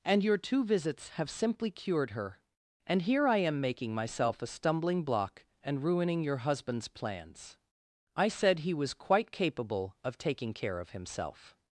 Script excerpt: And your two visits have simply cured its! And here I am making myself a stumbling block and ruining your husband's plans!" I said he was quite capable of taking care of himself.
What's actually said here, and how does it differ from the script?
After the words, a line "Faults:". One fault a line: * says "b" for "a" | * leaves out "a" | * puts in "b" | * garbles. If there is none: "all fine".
And your two visits have simply cured her! And here I am making myself a stumbling block and ruining your husband's plans!" I said he was quite capable of taking care of himself.
Faults:
* says "her" for "its"